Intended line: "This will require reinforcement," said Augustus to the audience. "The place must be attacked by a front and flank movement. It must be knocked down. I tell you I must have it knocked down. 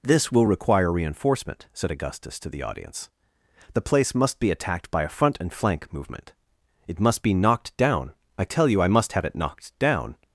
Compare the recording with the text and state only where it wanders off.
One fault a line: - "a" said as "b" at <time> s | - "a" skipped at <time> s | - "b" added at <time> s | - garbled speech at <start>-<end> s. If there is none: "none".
none